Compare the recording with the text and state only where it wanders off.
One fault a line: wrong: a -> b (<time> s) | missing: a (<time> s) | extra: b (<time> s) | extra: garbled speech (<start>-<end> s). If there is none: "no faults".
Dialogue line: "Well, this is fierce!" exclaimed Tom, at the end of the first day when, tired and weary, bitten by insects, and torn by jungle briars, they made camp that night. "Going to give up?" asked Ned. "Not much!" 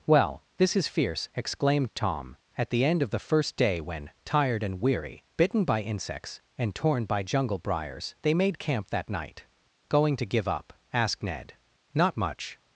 no faults